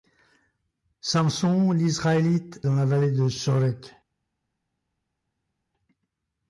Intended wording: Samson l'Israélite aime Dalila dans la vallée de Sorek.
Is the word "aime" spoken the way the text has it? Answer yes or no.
no